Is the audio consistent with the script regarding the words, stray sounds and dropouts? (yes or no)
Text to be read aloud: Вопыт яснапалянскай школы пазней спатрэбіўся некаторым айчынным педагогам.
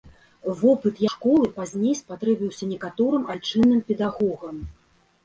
no